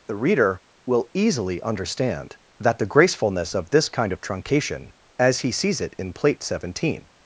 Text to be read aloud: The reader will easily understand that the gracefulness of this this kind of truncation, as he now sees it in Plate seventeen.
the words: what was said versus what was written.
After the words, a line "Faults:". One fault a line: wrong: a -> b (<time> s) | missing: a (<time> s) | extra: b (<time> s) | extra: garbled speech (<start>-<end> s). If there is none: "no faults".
The reader will easily understand that the gracefulness of this kind of truncation, as he sees it in Plate seventeen.
Faults:
missing: this (3.9 s)
missing: now (5.5 s)